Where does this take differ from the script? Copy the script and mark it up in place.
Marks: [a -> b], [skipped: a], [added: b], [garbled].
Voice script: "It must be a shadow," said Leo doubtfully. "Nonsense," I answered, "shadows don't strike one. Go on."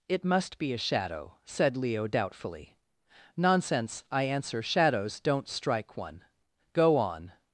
"It must be a shadow," said Leo doubtfully. "Nonsense," I [answered, -> answer] "shadows don't strike one. Go on."